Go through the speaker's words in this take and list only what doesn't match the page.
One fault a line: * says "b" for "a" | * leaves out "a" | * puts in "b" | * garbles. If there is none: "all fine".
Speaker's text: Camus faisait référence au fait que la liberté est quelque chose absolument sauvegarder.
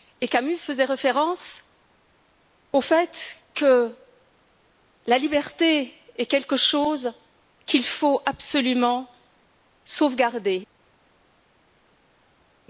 * puts in "qu'il faut"